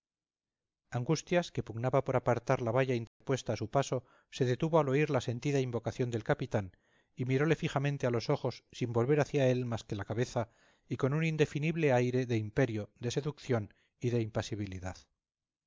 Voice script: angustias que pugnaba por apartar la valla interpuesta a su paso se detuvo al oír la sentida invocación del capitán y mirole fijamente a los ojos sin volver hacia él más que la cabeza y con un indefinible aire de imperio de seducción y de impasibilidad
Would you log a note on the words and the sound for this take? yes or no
yes